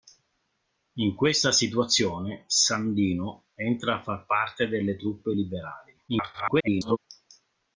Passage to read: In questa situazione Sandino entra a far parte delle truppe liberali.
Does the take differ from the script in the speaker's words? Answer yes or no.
yes